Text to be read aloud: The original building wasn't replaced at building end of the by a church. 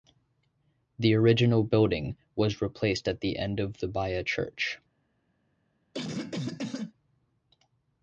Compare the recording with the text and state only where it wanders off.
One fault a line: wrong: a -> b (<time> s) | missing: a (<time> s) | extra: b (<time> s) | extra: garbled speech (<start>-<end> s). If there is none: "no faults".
wrong: wasn't -> was (2.4 s)
wrong: building -> the (3.2 s)